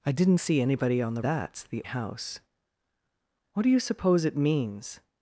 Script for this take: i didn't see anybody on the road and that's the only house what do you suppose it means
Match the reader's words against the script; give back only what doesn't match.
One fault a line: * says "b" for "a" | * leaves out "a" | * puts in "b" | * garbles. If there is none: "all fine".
* leaves out "road and"
* leaves out "only"